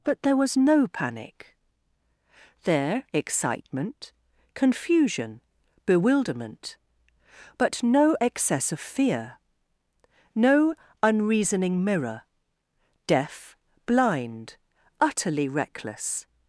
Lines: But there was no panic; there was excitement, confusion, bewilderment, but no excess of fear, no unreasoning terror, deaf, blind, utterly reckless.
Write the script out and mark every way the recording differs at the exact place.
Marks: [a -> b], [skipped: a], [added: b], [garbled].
But there was no panic; there [skipped: was] excitement, confusion, bewilderment, but no excess of fear, no unreasoning [terror, -> mirror] deaf, blind, utterly reckless.